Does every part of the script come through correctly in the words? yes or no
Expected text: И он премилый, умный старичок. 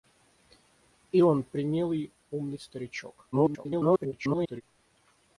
no